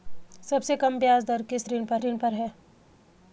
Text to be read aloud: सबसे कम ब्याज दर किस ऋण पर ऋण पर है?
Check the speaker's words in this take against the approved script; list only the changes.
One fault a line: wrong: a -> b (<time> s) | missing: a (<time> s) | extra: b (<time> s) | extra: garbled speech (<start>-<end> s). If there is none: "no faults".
no faults